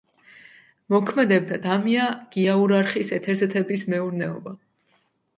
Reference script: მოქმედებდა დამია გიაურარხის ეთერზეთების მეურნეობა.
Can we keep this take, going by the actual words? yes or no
yes